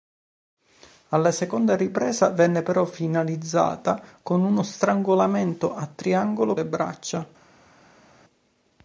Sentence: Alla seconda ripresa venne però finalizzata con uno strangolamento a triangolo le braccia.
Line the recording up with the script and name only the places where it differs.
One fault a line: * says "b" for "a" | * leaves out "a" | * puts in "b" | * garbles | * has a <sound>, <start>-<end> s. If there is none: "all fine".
all fine